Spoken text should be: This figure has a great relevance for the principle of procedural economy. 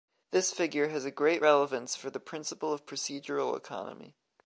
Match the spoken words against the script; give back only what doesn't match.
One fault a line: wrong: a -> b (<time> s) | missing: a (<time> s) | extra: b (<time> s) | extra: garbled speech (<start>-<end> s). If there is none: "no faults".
no faults